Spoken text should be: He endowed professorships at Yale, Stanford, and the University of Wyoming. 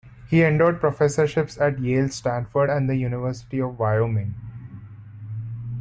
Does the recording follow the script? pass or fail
pass